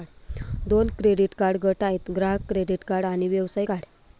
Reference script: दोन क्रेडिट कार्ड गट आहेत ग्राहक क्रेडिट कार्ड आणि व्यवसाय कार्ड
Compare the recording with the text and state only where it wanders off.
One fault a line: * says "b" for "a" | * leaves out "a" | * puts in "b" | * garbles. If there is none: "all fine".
all fine